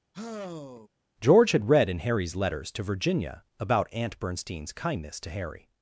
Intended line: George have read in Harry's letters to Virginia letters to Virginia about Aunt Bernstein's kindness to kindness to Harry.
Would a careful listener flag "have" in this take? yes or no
yes